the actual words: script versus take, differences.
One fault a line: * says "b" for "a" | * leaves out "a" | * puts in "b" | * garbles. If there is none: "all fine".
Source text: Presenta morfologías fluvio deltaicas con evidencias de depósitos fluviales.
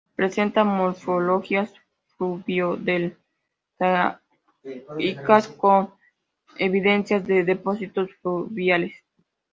all fine